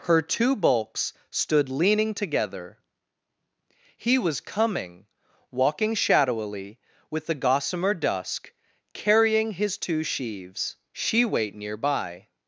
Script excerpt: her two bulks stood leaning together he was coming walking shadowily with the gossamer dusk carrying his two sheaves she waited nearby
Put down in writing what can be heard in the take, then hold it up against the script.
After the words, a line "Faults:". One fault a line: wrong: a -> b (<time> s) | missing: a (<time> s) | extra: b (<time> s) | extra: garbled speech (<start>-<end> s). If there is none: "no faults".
her two bulks stood leaning together he was coming walking shadowily with the gossamer dusk carrying his two sheaves she wait nearby
Faults:
wrong: waited -> wait (11.2 s)